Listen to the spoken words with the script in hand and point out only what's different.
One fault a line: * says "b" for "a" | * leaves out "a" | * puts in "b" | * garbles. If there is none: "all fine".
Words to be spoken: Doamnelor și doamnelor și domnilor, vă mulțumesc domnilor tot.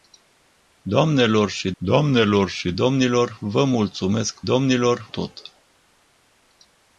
all fine